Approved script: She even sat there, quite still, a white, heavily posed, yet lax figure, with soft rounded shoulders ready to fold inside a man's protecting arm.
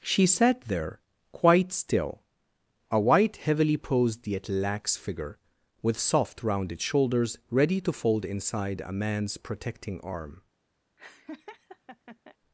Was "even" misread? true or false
true